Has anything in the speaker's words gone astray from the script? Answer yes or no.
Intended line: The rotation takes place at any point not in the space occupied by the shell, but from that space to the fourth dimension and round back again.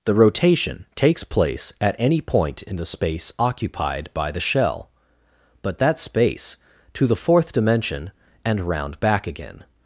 yes